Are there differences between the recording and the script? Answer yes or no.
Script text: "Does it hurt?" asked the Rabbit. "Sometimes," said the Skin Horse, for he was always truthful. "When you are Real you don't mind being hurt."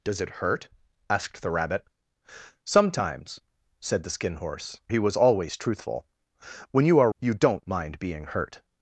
yes